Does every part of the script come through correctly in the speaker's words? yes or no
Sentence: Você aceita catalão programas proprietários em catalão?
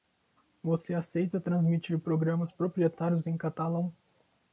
no